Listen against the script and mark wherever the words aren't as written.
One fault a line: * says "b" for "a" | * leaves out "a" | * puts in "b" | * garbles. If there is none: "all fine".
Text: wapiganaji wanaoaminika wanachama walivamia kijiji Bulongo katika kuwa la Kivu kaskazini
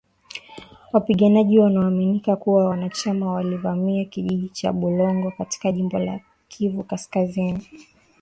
* puts in "kuwa"
* puts in "cha"
* says "jimbo" for "kuwa"